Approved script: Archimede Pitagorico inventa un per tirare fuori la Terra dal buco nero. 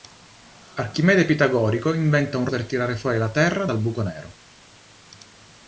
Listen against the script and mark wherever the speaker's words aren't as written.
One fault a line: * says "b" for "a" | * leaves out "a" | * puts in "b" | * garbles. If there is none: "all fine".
all fine